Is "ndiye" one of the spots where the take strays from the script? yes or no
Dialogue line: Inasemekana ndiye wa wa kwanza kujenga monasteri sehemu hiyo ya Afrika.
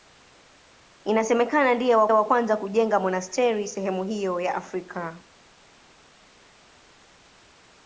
no